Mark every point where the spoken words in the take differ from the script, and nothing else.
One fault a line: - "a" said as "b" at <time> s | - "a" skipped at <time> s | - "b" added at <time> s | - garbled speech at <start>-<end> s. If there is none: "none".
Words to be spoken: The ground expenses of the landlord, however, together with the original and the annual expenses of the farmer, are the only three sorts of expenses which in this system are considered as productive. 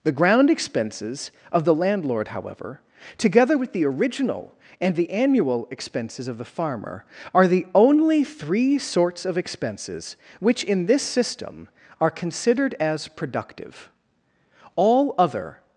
- "All other" added at 14.8 s